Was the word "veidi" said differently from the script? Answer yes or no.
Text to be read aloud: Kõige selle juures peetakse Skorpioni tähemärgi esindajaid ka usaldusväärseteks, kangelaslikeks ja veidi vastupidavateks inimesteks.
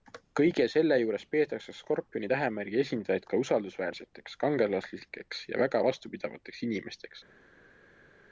yes